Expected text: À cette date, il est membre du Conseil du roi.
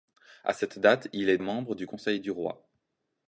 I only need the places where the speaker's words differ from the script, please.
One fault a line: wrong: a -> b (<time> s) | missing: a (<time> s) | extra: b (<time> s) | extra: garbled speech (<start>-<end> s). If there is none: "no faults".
no faults